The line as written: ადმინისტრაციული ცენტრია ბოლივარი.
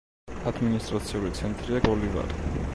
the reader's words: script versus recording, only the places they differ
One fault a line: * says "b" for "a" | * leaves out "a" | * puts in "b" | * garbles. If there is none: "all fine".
all fine